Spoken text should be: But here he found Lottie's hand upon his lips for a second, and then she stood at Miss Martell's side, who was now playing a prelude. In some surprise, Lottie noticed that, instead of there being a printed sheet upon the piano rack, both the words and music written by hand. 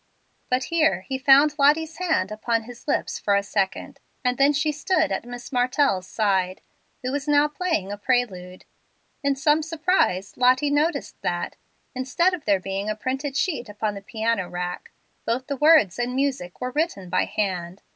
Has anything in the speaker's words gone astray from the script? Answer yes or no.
yes